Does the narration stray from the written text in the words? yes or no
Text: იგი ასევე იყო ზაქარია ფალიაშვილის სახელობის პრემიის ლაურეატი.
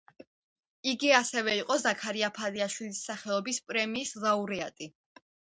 no